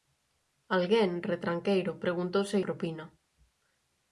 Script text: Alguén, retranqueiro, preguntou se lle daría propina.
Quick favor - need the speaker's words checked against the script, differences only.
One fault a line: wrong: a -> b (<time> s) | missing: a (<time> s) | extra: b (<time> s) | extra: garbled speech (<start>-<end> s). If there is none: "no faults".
missing: lle daría (2.6 s)